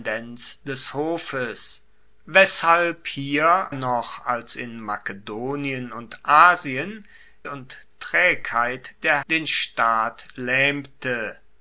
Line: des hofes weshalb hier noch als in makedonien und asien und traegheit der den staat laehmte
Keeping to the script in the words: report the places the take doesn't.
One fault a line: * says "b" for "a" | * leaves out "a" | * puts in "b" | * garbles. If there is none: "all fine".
all fine